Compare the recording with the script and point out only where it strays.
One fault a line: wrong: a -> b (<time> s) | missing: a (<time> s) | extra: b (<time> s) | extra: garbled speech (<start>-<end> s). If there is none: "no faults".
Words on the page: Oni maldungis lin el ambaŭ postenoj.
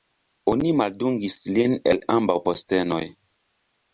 no faults